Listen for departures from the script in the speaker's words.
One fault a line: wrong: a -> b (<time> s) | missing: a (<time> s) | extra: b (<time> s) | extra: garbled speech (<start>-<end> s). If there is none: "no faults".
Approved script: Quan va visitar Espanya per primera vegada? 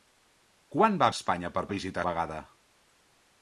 missing: visitar (1.1 s)
wrong: primera -> visitar (1.7 s)